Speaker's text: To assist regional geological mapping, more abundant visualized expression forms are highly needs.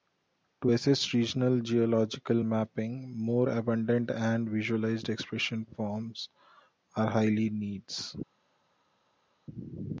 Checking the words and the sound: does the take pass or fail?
fail